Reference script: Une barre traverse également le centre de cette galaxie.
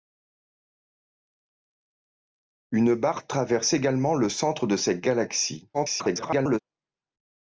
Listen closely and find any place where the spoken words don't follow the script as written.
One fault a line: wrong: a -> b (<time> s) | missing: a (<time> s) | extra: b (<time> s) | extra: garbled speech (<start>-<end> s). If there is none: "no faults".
extra: garbled speech (5.7-6.6 s)